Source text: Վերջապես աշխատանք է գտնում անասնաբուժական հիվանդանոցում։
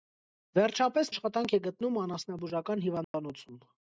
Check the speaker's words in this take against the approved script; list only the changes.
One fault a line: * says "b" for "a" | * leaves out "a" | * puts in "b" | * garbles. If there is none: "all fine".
all fine